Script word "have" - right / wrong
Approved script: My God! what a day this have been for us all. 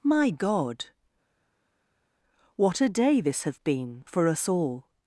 wrong